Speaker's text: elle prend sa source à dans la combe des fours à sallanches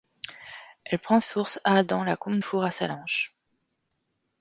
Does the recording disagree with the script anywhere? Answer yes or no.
yes